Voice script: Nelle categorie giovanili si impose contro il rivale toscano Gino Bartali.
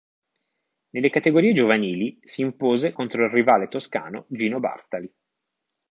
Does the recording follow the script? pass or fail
pass